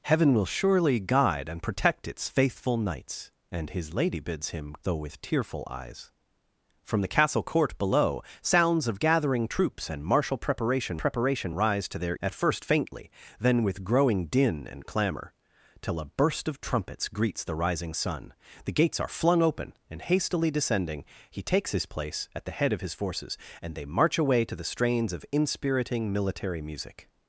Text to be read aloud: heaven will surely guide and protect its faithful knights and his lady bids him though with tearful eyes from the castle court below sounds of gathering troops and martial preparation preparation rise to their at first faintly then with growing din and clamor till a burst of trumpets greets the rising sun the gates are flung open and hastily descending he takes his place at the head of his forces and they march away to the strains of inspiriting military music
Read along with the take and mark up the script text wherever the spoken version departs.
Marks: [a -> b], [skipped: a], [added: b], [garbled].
heaven will surely guide and protect its faithful knights and his lady bids him though with tearful eyes from the castle court below sounds of gathering troops and martial preparation preparation rise to their at first faintly then with growing din and clamor till a burst of trumpets greets the rising sun the gates are flung open and hastily descending he takes his place at the head of his forces and they march away to the strains of inspiriting military music